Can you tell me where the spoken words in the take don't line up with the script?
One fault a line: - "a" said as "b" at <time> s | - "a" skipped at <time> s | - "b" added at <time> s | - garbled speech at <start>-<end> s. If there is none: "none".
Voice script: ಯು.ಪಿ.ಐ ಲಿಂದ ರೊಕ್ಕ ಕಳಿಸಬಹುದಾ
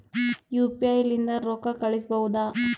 none